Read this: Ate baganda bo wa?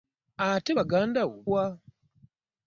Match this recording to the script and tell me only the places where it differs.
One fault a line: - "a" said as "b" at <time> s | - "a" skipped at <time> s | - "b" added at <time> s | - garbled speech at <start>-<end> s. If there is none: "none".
none